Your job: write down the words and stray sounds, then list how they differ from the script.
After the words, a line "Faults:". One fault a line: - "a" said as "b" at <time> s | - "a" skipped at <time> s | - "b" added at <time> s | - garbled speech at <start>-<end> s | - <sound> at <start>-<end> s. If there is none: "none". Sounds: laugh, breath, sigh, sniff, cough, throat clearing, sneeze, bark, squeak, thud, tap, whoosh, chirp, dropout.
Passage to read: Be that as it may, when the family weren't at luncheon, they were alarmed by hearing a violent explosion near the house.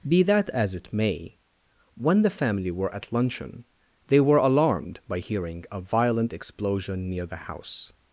Be that as it may, when the family were at luncheon, they were alarmed by hearing a violent explosion near the house.
Faults:
- "weren't" said as "were" at 2.7 s